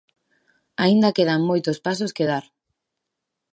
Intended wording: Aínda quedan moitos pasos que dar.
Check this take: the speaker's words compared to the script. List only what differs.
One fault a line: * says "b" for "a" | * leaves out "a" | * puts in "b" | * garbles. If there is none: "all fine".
all fine